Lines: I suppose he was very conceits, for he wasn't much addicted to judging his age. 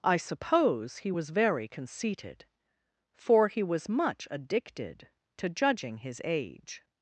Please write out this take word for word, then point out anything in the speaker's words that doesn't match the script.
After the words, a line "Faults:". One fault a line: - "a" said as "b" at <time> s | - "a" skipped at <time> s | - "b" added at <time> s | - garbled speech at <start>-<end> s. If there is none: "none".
I suppose he was very conceited, for he was much addicted to judging his age.
Faults:
- "conceits" said as "conceited" at 1.7 s
- "wasn't" said as "was" at 3.6 s